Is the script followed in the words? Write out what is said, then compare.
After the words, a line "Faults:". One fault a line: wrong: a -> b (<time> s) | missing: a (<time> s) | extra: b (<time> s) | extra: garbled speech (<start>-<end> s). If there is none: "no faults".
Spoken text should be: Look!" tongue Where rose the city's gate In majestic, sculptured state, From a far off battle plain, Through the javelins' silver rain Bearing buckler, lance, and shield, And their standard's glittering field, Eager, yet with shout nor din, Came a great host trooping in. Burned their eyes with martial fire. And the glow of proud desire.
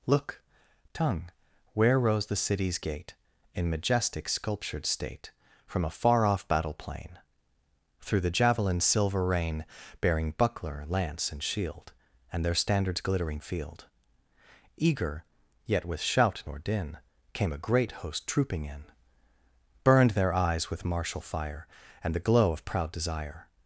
Look!" tongue Where rose the city's gate In majestic, sculptured state, From a far off battle plain, Through the javelins' silver rain Bearing buckler, lance, and shield, And their standard's glittering field, Eager, yet with shout nor din, Came a great host trooping in. Burned their eyes with martial fire. And the glow of proud desire.
Faults:
no faults